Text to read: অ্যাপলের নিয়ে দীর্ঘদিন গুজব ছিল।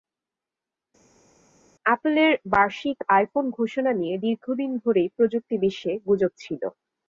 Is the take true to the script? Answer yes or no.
no